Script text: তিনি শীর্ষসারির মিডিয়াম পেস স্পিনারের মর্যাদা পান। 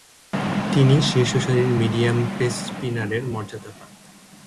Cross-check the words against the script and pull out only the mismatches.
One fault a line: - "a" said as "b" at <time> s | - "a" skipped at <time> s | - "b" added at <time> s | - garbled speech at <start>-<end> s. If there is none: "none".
none